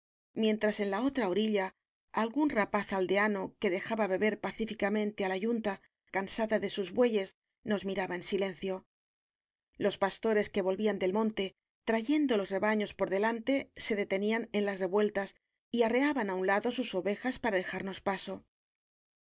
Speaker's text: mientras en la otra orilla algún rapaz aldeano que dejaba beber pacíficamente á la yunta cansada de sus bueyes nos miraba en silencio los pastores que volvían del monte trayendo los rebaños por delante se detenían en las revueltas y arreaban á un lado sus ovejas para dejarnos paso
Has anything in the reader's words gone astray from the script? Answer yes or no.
no